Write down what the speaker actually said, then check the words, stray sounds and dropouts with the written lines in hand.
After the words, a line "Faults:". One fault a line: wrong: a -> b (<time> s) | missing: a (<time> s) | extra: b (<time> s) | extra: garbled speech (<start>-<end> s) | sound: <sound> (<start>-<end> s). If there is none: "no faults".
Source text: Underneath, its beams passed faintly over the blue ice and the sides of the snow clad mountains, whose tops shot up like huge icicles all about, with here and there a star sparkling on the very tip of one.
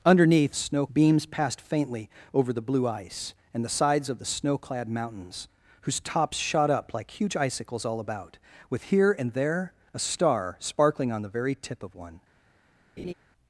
Underneath, snow beams passed faintly over the blue ice and the sides of the snow clad mountains, whose tops shot up like huge icicles all about, with here and there a star sparkling on the very tip of one.
Faults:
wrong: its -> snow (0.5 s)
sound: laugh (13.0-13.1 s)